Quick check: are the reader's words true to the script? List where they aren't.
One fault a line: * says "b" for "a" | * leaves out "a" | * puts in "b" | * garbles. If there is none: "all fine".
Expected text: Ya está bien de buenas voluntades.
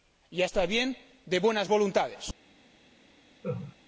all fine